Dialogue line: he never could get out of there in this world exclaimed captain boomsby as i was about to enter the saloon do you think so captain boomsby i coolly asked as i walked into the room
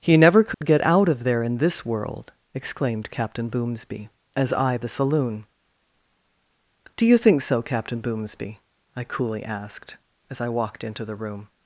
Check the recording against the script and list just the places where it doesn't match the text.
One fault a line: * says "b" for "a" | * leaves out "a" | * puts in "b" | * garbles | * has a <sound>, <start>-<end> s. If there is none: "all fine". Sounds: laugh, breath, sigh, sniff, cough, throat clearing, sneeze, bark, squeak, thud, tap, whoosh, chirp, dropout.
* has a dropout, 0.5-0.6 s
* leaves out "was about to enter"